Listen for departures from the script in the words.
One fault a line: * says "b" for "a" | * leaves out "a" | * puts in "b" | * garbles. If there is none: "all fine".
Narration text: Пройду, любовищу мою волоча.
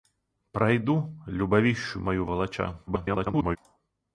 * garbles